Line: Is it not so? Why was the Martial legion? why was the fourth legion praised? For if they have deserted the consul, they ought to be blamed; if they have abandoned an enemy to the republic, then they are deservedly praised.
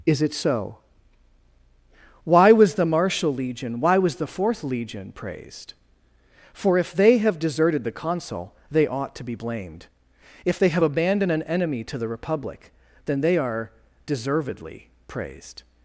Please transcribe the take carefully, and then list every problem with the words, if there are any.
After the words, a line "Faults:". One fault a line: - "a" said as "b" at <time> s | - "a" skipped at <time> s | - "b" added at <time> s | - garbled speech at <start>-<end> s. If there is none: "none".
Is it so? Why was the Martial legion? why was the fourth legion praised? For if they have deserted the consul, they ought to be blamed; if they have abandoned an enemy to the republic, then they are deservedly praised.
Faults:
- "not" skipped at 0.3 s